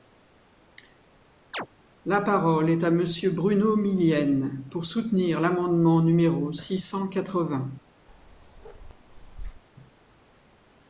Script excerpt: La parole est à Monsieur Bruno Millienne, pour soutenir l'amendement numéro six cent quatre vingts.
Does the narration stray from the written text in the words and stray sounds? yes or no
yes